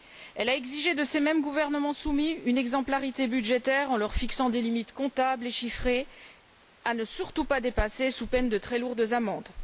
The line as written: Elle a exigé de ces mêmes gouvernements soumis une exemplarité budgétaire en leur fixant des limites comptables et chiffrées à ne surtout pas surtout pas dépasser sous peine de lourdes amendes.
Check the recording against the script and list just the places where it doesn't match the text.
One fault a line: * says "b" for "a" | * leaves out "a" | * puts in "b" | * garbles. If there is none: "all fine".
* leaves out "surtout pas"
* puts in "très"